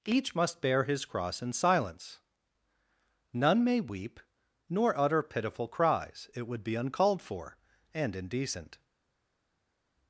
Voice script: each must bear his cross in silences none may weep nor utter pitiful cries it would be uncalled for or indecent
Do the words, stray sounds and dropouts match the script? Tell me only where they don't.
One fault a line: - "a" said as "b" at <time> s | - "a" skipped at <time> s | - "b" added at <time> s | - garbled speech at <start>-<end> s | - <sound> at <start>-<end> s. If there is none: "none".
- "silences" said as "silence" at 1.5 s
- "or" said as "and" at 7.9 s